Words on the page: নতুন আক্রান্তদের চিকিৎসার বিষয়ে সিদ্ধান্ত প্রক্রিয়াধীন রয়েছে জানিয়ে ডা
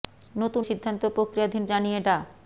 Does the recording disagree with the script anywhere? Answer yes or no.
yes